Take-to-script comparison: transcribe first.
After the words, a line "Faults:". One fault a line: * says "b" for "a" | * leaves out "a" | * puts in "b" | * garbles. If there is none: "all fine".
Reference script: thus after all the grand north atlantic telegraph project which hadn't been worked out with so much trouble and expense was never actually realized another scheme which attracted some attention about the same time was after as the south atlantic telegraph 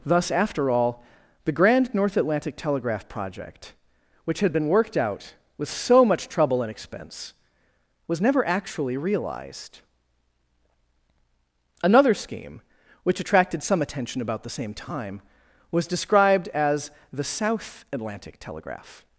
thus after all the grand north atlantic telegraph project which had been worked out with so much trouble and expense was never actually realized another scheme which attracted some attention about the same time was described as the south atlantic telegraph
Faults:
* says "had" for "hadn't"
* says "described" for "after"